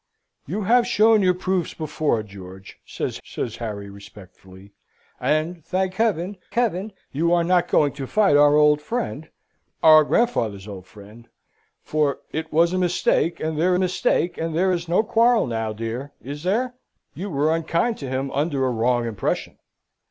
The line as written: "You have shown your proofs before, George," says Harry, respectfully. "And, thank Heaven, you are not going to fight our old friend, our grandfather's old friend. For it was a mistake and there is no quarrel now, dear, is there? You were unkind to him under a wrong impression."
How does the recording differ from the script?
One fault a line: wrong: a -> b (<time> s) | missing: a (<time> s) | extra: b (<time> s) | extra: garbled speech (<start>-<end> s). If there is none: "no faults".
extra: says (3.2 s)
extra: Heaven (6.5 s)
extra: mistake and there (13.8 s)